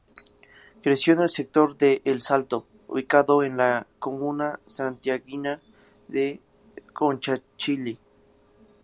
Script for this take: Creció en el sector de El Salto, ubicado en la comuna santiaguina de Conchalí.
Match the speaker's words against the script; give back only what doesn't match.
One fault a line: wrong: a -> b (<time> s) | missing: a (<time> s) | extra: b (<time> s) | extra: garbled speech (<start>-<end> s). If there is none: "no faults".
no faults